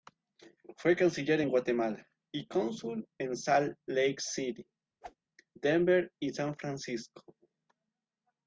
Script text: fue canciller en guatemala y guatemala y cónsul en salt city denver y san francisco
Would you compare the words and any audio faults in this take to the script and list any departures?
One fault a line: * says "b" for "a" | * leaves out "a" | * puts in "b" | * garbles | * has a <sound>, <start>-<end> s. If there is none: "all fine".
* leaves out "guatemala y"
* puts in "lake"
* has a whoosh, 5.0-5.2 s